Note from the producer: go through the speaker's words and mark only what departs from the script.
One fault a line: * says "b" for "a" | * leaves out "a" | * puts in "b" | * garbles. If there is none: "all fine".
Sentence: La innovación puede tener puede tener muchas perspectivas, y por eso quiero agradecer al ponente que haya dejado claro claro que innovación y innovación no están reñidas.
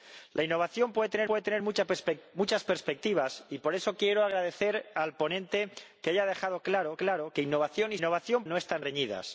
all fine